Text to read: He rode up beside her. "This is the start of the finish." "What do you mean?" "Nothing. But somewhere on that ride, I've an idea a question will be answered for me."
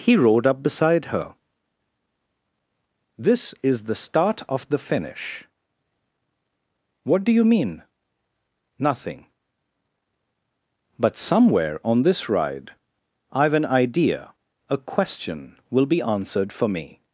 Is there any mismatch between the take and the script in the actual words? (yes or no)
yes